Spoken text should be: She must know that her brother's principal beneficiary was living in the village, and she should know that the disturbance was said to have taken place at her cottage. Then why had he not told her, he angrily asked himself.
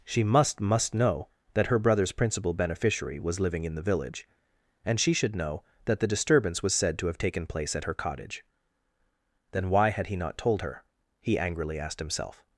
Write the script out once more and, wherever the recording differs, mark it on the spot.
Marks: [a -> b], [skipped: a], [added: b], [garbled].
She must [added: must] know that her brother's principal beneficiary was living in the village, and she should know that the disturbance was said to have taken place at her cottage. Then why had he not told her, he angrily asked himself.